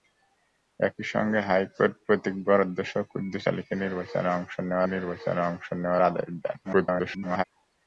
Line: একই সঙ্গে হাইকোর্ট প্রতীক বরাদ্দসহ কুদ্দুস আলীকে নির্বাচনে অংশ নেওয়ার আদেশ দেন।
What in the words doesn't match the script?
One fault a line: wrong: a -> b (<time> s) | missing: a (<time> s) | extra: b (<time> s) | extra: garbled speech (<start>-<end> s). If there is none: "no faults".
extra: নির্বাচনে অংশ নেওয়ার (4.8 s)
extra: garbled speech (6.6-7.4 s)